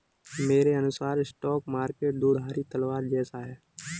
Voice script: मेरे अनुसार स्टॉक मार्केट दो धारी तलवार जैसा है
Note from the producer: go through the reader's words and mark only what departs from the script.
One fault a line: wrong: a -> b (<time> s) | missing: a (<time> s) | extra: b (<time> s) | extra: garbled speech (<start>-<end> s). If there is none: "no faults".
no faults